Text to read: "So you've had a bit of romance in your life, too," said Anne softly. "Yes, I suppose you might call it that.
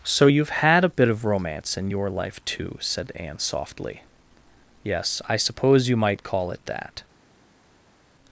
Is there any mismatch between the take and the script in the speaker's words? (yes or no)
no